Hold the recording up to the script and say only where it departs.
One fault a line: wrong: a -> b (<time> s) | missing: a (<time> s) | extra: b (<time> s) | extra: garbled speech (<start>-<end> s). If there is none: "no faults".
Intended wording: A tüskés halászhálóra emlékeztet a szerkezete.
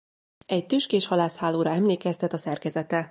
wrong: A -> Egy (0.5 s)